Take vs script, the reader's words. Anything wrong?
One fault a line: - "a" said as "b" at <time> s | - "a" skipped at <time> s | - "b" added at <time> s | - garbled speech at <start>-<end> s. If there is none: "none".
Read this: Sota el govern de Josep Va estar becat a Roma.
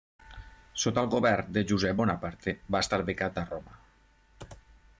- "Bonaparte" added at 2.0 s